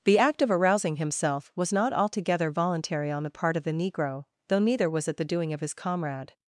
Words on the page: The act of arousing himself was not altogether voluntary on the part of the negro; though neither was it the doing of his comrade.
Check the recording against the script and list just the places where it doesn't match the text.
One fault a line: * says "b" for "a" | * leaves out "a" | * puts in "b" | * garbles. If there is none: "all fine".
all fine